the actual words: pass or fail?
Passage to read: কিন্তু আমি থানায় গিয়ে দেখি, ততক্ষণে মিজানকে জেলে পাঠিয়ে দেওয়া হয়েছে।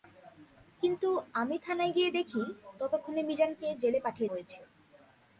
fail